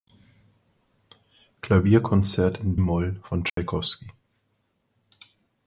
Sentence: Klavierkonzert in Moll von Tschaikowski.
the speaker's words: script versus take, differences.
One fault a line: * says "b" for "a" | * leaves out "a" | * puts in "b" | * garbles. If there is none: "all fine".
all fine